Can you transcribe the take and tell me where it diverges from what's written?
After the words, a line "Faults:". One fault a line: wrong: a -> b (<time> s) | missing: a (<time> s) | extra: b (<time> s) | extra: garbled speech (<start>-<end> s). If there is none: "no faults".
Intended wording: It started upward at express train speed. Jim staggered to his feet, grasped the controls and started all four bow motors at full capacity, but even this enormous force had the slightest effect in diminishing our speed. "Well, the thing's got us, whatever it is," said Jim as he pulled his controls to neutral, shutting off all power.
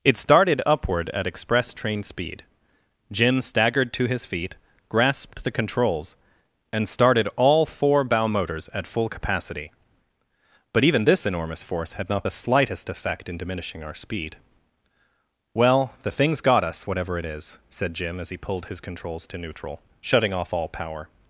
It started upward at express train speed. Jim staggered to his feet, grasped the controls and started all four bow motors at full capacity, but even this enormous force had not the slightest effect in diminishing our speed. "Well, the thing's got us, whatever it is," said Jim as he pulled his controls to neutral, shutting off all power.
Faults:
extra: not (12.1 s)